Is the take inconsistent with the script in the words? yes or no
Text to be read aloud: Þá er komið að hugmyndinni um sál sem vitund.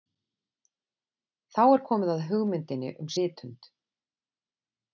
yes